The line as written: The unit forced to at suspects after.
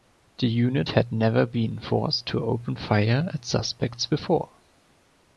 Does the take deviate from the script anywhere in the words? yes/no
yes